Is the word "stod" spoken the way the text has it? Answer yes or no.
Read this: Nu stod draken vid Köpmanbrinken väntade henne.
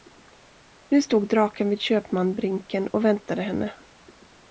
yes